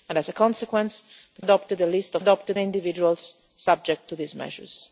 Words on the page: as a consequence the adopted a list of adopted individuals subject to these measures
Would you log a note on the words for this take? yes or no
no